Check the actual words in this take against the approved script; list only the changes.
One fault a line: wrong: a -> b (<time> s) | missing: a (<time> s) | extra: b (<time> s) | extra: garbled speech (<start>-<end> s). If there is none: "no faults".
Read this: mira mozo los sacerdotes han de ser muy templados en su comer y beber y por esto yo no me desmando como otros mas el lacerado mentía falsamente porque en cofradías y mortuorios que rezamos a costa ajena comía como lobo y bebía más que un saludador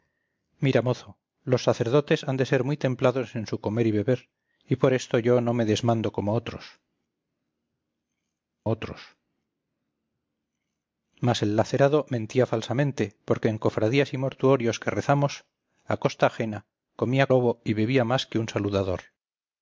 extra: otros (8.7 s)
missing: como (17.3 s)